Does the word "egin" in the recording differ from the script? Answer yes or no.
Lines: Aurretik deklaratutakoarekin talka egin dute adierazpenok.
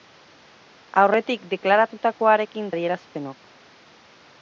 yes